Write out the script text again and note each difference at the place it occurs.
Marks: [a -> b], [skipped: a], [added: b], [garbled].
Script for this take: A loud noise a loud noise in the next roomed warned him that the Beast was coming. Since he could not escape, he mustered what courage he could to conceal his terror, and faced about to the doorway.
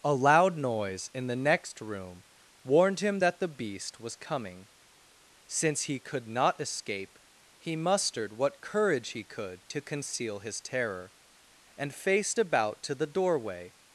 A loud noise [skipped: a loud noise] in the next [roomed -> room] warned him that the Beast was coming. Since he could not escape, he mustered what courage he could to conceal his terror, and faced about to the doorway.